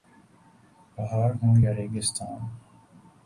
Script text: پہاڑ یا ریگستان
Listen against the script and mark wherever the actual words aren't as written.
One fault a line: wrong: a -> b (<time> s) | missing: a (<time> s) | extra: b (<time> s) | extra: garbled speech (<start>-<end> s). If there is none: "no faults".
extra: ہوں (1.4 s)